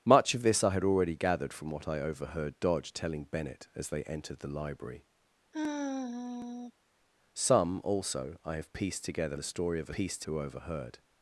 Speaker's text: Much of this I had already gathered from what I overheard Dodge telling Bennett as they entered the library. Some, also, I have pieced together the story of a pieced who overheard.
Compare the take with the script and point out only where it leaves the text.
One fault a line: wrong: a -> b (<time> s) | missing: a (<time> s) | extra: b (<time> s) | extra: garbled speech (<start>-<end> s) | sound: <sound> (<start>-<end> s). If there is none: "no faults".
sound: sigh (5.5-6.7 s)